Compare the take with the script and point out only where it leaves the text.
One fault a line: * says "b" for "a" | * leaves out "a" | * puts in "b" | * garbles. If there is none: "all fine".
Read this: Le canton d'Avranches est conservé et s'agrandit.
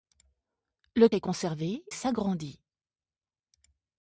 * leaves out "canton d'Avranches"
* leaves out "et"